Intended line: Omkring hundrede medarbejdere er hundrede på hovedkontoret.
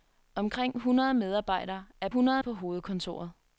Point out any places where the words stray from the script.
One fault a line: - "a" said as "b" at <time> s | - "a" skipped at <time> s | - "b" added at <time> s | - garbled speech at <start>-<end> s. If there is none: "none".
none